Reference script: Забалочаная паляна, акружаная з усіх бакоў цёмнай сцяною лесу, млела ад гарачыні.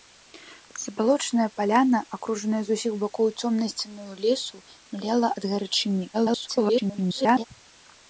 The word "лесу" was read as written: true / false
true